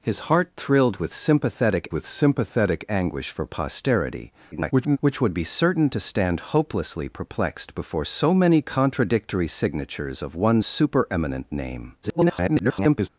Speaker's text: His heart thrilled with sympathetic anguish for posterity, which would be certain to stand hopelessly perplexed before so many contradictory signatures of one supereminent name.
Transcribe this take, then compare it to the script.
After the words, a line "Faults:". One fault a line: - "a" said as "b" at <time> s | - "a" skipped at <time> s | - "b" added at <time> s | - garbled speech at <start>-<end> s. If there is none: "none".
His heart thrilled with sympathetic with sympathetic anguish for posterity, [garbled] which would be certain to stand hopelessly perplexed before so many contradictory signatures of one supereminent name. [garbled]
Faults:
- "with sympathetic" added at 1.9 s
- garbled speech at 4.5-5.0 s
- garbled speech at 12.0-13.1 s